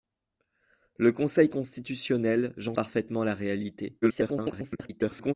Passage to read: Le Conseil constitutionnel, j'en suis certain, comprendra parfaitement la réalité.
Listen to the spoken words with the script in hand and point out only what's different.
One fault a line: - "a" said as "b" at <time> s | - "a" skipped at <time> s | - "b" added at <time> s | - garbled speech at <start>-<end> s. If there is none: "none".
- "suis certain comprendra" skipped at 2.7 s
- garbled speech at 4.0-5.3 s